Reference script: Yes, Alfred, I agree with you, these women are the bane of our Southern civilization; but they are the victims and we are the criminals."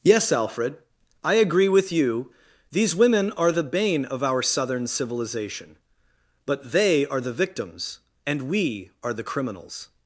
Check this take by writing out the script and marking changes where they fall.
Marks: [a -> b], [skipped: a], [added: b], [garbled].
Yes, Alfred, I agree with you, these women are the bane of our Southern civilization; but they are the victims and we are the criminals."